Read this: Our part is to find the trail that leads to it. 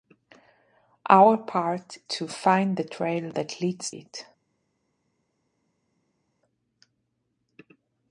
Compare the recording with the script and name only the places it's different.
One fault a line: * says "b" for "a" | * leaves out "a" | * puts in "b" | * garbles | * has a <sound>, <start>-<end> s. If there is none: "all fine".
* leaves out "is"
* leaves out "to"